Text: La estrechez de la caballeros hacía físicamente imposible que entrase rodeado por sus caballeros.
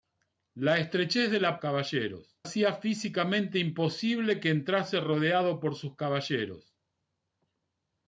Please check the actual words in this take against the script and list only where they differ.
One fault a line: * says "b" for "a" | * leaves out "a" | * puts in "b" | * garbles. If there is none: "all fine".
all fine